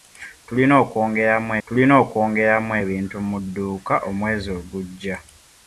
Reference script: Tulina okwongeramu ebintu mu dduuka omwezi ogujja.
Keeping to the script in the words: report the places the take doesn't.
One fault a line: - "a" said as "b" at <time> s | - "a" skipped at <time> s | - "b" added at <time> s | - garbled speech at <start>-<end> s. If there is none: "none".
- "tulina okwongeramu" added at 1.6 s